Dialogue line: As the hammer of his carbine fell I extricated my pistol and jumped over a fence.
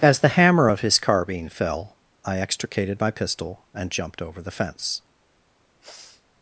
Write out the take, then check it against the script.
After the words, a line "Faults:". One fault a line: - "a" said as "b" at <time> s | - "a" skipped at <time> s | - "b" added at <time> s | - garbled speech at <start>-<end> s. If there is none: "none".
As the hammer of his carbine fell I extricated my pistol and jumped over the fence.
Faults:
- "a" said as "the" at 4.4 s